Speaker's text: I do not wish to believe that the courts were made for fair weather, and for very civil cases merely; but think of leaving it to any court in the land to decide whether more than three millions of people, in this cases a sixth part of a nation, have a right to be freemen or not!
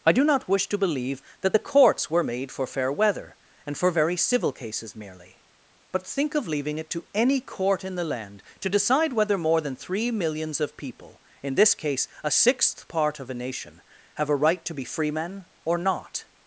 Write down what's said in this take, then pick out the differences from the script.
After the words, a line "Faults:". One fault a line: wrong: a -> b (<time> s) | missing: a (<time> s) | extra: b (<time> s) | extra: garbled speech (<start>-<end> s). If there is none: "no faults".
I do not wish to believe that the courts were made for fair weather, and for very civil cases merely; but think of leaving it to any court in the land to decide whether more than three millions of people, in this case a sixth part of a nation, have a right to be freemen or not!
Faults:
wrong: cases -> case (11.7 s)